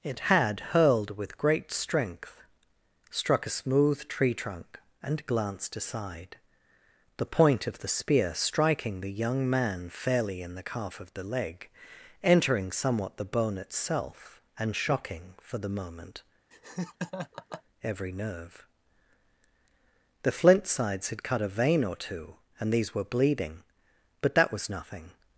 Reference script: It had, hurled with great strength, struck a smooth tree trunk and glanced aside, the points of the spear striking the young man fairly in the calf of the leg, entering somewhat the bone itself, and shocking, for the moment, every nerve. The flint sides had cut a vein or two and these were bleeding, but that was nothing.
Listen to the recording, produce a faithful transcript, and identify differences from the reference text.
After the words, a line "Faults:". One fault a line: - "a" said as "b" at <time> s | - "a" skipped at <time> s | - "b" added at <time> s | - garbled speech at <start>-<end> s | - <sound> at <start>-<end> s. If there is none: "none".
It had, hurled with great strength, struck a smooth tree trunk and glanced aside, the point of the spear striking the young man fairly in the calf of the leg, entering somewhat the bone itself, and shocking, for the moment, every nerve. The flint sides had cut a vein or two and these were bleeding, but that was nothing.
Faults:
- "points" said as "point" at 7.2 s
- laugh at 16.5-17.6 s